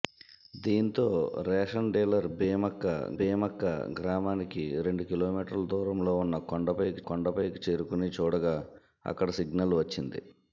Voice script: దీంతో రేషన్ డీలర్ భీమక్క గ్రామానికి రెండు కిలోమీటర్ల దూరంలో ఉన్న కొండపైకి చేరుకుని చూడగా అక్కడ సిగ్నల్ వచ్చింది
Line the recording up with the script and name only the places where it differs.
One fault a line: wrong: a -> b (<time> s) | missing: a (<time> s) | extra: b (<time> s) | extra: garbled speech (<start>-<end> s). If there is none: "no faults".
extra: భీమక్క (3.2 s)
extra: కొండపైకి (7.1 s)